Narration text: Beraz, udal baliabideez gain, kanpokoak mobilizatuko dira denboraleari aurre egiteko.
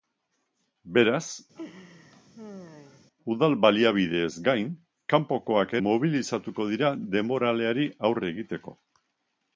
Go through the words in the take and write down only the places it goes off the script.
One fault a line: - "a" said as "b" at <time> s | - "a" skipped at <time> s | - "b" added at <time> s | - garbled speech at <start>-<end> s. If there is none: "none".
none